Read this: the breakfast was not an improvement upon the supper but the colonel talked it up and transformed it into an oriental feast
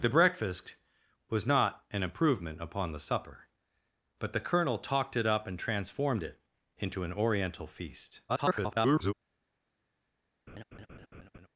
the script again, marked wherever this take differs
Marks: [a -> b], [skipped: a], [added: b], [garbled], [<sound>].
the breakfast was not an improvement upon the supper but the colonel talked it up and transformed it into an oriental feast [garbled] [laugh]